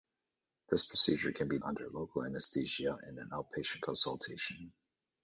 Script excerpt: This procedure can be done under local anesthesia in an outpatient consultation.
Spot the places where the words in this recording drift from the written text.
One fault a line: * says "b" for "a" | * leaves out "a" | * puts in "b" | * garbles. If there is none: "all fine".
* leaves out "done"